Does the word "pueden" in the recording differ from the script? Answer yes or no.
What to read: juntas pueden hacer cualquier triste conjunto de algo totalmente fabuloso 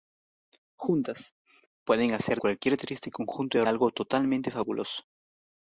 no